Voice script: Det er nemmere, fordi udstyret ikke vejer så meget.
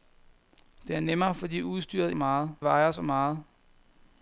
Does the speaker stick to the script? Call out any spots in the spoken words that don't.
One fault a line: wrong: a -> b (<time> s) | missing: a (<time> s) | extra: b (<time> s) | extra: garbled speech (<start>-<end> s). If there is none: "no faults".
wrong: ikke -> meget (2.1 s)